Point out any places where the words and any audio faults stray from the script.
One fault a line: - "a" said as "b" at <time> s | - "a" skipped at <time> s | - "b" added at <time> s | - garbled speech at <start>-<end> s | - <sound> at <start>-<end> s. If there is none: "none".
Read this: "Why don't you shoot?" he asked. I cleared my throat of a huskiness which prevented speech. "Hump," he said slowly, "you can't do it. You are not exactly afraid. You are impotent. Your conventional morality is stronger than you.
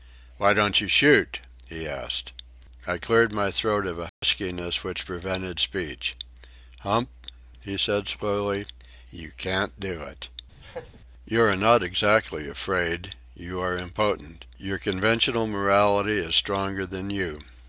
- dropout at 4.1-4.2 s
- laugh at 10.6-11.0 s